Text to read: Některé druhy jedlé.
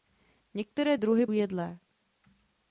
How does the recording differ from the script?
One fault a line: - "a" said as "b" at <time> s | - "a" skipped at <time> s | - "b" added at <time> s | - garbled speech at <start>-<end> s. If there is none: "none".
none